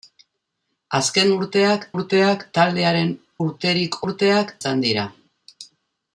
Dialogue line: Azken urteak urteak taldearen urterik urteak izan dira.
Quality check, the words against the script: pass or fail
pass